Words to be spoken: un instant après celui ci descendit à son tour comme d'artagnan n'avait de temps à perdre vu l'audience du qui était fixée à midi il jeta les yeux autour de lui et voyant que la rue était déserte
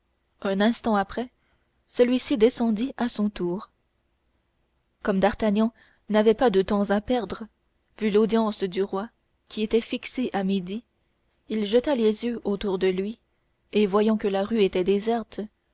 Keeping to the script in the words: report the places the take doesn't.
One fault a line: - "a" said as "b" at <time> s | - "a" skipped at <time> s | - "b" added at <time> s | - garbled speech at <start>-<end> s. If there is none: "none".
- "pas" added at 6.3 s
- "roi" added at 8.8 s